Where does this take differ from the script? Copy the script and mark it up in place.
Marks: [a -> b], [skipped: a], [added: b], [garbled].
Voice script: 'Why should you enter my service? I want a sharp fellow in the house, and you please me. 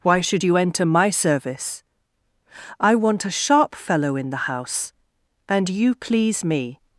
'Why should you enter my service? I want a sharp fellow in the house, and you please me.